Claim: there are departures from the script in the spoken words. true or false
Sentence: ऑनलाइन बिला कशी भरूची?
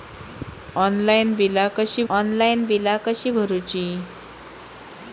true